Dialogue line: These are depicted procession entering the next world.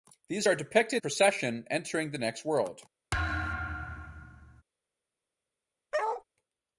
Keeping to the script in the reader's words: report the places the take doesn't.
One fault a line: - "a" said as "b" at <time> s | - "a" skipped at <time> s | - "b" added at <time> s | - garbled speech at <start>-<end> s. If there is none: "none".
none